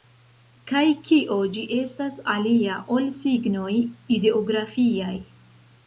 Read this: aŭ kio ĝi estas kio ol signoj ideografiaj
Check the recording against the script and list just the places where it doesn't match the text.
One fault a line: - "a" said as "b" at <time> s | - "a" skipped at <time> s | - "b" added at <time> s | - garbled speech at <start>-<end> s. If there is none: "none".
- "aŭ" said as "kaj" at 0.7 s
- "kio" said as "alia" at 2.4 s